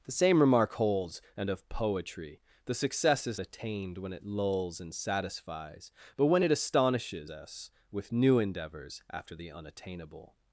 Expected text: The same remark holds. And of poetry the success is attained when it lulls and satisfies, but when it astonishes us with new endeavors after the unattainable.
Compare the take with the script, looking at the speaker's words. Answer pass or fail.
pass